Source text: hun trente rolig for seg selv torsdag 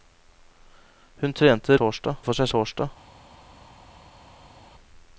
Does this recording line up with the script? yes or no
no